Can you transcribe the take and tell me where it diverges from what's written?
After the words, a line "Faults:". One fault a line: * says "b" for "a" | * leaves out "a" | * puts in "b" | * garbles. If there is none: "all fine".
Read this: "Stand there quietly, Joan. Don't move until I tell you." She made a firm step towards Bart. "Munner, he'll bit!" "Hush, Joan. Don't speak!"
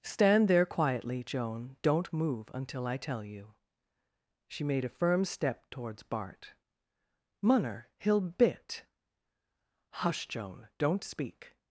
"Stand there quietly, Joan. Don't move until I tell you." She made a firm step towards Bart. "Munner, he'll bit!" "Hush, Joan. Don't speak!"
Faults:
all fine